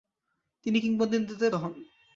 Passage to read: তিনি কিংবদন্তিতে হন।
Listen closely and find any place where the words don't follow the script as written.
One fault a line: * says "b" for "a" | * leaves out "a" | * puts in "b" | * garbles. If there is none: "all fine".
all fine